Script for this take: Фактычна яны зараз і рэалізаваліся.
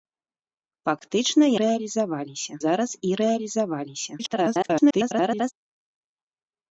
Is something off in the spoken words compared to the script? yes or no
yes